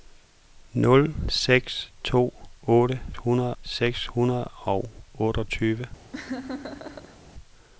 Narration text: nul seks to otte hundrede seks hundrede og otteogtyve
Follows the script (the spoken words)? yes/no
yes